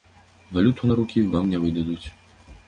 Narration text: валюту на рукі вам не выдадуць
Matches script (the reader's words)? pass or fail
pass